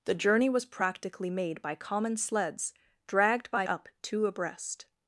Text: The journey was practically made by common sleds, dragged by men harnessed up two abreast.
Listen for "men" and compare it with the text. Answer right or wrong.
wrong